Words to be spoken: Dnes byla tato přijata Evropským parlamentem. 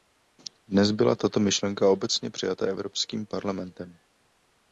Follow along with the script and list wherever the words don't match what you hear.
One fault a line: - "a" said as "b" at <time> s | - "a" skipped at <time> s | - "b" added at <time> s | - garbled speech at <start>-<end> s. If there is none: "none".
- "myšlenka obecně" added at 1.4 s